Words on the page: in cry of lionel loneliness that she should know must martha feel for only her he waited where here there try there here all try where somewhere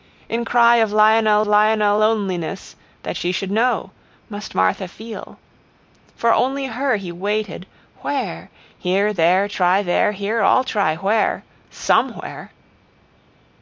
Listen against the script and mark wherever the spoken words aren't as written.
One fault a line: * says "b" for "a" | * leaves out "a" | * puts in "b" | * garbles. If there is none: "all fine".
* puts in "lionel"